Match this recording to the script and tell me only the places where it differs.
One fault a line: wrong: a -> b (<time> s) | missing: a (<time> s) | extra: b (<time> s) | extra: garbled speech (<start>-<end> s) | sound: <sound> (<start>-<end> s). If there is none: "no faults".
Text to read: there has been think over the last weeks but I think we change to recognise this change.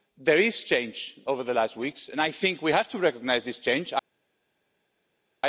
wrong: think -> change (0.7 s)
wrong: but -> and (2.1 s)
wrong: change -> have (2.7 s)